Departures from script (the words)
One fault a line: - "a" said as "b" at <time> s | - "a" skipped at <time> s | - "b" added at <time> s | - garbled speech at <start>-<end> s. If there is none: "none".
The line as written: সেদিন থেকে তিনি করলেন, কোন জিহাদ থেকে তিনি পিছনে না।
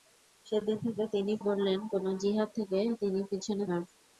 none